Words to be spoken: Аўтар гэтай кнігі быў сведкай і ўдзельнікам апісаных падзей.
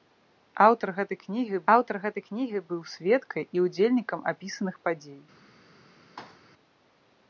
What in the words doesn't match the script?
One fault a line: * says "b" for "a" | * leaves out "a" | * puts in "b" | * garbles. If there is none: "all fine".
* puts in "аўтар гэтай кнігі"